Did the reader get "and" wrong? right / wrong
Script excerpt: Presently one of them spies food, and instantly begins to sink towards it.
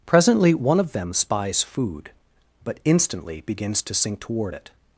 wrong